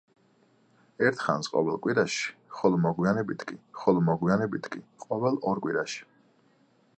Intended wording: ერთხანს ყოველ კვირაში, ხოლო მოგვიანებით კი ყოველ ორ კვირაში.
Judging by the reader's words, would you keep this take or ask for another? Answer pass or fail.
fail